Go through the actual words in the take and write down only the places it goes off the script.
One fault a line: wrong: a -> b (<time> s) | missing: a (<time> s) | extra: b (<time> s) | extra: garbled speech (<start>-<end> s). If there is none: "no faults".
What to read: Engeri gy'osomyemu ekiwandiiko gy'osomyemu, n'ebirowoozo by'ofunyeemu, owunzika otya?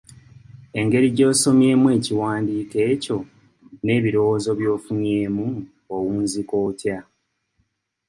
wrong: gy'osomyemu -> ekyo (2.9 s)